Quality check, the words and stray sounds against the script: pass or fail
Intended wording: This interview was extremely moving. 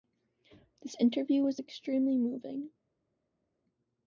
pass